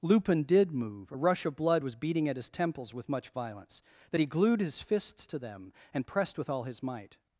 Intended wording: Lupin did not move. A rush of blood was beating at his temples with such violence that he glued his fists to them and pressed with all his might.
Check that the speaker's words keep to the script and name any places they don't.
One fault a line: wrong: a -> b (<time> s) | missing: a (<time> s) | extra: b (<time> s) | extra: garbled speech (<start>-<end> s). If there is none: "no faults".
missing: not (0.7 s)
wrong: such -> much (3.1 s)